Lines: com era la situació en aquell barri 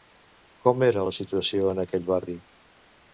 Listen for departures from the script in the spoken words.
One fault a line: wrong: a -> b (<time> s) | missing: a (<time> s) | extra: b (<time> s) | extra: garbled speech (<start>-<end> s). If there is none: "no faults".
no faults